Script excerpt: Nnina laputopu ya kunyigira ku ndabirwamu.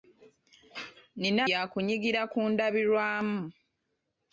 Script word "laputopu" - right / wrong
wrong